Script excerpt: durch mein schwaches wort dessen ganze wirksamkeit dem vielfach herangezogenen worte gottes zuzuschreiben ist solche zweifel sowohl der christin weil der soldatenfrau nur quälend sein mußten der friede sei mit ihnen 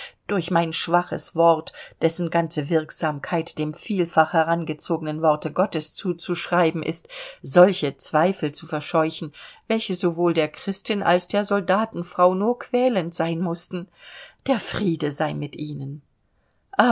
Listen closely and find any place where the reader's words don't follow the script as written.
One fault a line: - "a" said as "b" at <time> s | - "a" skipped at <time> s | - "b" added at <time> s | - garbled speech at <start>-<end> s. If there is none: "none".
- "zu verscheuchen welche" added at 8.5 s
- "weil" said as "als" at 11.0 s